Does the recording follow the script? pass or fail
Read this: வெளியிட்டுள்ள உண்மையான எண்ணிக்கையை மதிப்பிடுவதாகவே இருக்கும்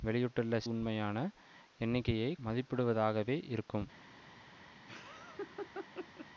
pass